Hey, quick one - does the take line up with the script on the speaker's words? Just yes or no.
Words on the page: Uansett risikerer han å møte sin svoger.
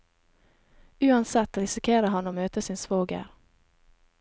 yes